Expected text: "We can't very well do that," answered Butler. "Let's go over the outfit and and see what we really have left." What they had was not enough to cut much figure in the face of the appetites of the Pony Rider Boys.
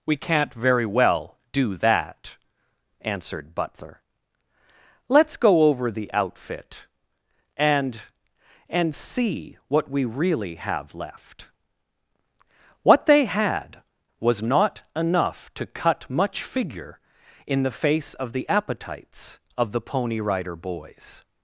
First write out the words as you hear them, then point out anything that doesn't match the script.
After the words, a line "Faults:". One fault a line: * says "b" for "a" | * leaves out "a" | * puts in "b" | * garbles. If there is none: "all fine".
"We can't very well do that," answered Butler. "Let's go over the outfit and and see what we really have left." What they had was not enough to cut much figure in the face of the appetites of the Pony Rider Boys.
Faults:
all fine